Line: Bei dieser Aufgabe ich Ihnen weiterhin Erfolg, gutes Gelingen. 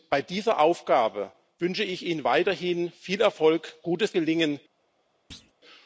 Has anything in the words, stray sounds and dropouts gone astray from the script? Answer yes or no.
yes